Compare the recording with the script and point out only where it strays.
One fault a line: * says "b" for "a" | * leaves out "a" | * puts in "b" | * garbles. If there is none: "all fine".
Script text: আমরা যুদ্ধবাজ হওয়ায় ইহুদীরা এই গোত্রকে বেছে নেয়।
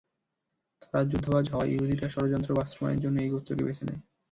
* says "তারা" for "আমরা"
* puts in "ষড়যন্ত্র বাস্তবায়নের জন্য"